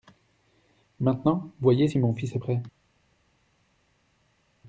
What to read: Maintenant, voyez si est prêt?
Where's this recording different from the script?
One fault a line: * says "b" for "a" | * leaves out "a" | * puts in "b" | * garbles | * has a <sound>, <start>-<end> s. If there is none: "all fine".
* puts in "mon fils"